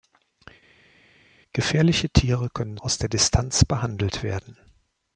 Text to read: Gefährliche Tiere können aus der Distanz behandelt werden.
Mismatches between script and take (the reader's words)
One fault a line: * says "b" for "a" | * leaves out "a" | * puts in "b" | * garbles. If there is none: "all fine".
all fine